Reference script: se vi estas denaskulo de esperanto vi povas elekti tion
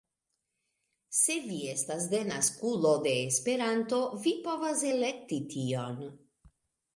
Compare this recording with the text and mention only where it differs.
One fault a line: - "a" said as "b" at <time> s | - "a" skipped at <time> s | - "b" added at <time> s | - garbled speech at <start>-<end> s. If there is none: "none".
none